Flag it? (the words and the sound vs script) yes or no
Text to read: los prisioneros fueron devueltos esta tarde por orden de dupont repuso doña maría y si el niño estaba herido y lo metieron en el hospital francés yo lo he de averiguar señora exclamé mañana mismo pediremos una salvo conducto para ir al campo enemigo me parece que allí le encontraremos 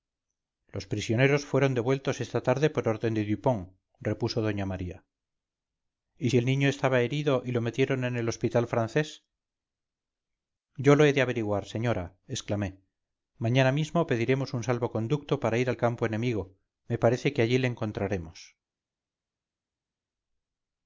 yes